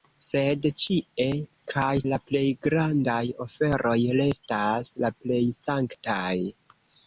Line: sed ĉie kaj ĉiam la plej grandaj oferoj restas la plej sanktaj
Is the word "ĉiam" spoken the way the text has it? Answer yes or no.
no